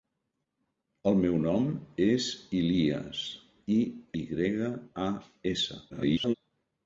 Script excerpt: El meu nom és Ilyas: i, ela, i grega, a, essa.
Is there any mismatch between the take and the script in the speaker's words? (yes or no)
yes